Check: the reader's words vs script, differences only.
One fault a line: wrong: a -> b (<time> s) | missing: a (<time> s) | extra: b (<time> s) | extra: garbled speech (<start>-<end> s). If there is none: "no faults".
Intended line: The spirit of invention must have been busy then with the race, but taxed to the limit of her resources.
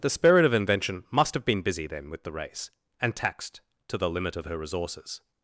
wrong: but -> and (3.0 s)